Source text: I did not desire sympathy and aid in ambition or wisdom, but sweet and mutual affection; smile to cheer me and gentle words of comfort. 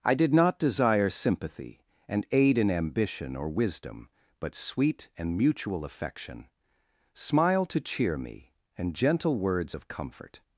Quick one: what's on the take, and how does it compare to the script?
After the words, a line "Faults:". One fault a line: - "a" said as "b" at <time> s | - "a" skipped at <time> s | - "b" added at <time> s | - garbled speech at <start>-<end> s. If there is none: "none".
I did not desire sympathy and aid in ambition or wisdom, but sweet and mutual affection; smile to cheer me and gentle words of comfort.
Faults:
none